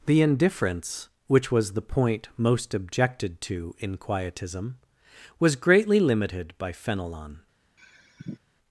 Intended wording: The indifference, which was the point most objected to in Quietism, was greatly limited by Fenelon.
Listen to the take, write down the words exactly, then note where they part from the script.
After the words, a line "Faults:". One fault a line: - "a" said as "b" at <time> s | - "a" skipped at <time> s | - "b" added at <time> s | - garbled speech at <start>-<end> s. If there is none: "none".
The indifference, which was the point most objected to in Quietism, was greatly limited by Fenelon.
Faults:
none